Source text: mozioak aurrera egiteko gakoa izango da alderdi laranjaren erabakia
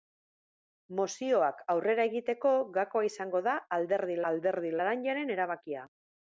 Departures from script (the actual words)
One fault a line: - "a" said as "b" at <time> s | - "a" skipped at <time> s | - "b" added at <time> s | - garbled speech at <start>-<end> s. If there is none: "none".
- "alderdi" added at 4.3 s